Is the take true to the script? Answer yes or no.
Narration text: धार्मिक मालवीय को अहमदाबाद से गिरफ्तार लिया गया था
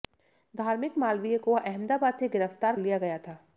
yes